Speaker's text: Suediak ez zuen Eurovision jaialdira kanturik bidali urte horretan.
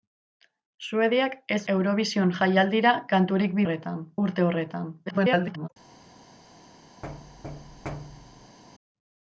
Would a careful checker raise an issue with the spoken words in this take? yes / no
yes